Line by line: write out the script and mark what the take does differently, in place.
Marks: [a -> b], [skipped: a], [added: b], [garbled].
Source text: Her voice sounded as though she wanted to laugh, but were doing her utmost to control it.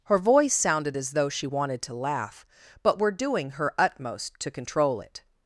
Her voice sounded as though she wanted to laugh, but were doing her utmost to control it.